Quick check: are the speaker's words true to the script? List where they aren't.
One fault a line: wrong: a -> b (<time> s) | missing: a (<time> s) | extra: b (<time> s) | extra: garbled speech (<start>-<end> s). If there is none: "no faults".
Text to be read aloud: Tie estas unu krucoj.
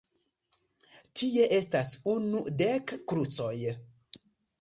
extra: dek (2.6 s)